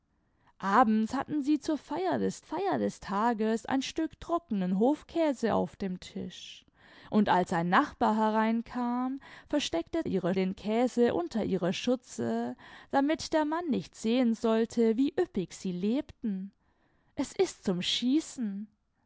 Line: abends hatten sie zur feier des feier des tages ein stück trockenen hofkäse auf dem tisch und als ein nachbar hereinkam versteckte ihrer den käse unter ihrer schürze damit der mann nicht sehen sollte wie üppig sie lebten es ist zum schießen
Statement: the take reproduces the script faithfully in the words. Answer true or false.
true